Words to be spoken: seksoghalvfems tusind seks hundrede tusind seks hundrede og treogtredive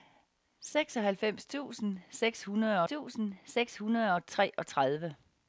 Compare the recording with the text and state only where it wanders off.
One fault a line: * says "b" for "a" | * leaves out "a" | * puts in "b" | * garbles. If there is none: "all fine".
all fine